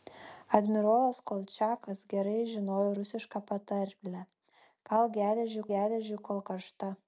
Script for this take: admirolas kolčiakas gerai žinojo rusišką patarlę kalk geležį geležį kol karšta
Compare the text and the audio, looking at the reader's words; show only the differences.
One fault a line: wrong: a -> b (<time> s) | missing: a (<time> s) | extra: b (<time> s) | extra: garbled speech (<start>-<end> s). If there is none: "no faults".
no faults